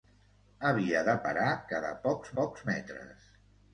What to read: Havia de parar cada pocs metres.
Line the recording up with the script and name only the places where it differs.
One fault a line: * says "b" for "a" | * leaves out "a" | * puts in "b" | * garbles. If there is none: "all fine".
* puts in "pocs"